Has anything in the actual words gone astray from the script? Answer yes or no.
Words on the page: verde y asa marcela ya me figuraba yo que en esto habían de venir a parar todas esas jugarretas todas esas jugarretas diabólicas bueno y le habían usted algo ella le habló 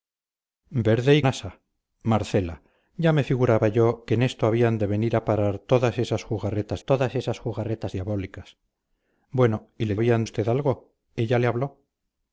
no